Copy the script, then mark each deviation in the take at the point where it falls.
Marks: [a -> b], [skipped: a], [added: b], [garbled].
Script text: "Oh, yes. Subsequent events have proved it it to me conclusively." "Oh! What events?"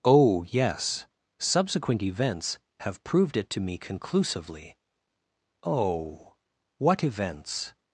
"Oh, yes. Subsequent events have proved it [skipped: it] to me conclusively." "Oh! What events?"